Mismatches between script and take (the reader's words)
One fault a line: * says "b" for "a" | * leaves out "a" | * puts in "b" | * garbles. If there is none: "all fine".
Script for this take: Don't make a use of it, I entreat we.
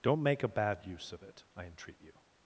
* puts in "bad"
* says "you" for "we"